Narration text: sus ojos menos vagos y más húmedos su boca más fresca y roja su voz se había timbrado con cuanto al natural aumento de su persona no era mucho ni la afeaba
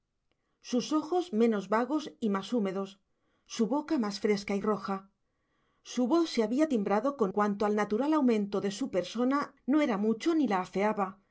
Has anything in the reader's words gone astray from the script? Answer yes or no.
no